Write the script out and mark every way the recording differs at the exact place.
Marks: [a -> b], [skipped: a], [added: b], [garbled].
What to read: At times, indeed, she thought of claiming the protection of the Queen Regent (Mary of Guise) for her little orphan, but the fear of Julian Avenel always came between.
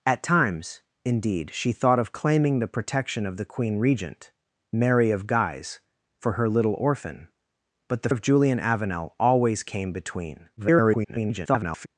At times, indeed, she thought of claiming the protection of the Queen Regent (Mary of Guise) for her little orphan, but the [skipped: fear] of Julian Avenel always came between. [garbled]